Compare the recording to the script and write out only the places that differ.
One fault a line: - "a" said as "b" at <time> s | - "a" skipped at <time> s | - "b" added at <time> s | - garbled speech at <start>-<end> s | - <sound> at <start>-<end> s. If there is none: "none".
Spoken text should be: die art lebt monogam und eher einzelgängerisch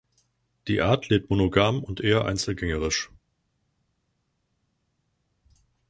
none